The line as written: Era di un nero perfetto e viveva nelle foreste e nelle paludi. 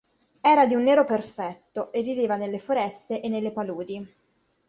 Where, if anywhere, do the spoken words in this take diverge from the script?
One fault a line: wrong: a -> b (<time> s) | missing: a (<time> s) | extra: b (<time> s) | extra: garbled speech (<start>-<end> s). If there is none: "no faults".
no faults